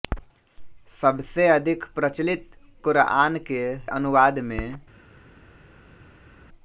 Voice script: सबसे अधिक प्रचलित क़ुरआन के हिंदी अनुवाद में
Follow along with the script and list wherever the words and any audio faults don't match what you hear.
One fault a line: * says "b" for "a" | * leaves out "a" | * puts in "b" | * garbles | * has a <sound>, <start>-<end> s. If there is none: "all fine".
* leaves out "हिंदी"